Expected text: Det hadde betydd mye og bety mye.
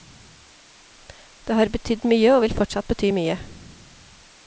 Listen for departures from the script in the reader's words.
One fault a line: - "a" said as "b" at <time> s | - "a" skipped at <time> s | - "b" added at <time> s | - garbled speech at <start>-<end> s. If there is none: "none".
- "hadde" said as "har" at 1.6 s
- "vil fortsatt" added at 2.4 s